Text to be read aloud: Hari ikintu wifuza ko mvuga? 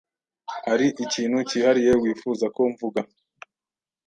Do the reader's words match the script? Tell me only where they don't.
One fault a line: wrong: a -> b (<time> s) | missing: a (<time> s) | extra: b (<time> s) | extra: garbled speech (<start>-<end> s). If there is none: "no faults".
extra: cyihariye (1.5 s)